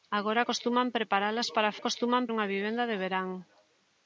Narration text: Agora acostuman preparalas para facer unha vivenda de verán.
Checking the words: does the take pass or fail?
fail